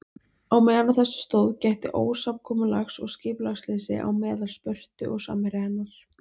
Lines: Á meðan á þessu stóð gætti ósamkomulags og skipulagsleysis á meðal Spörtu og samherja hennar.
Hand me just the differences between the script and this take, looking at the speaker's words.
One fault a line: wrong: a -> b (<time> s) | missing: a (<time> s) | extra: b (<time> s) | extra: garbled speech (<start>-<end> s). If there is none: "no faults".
no faults